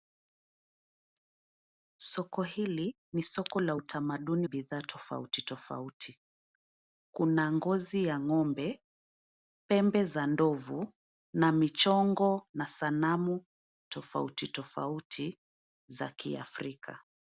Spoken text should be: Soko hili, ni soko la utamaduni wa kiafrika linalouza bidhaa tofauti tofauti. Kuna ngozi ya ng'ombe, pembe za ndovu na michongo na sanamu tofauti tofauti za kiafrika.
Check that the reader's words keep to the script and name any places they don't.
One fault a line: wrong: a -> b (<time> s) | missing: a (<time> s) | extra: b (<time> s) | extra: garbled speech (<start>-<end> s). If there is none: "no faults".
missing: wa kiafrika linalouza (4.5 s)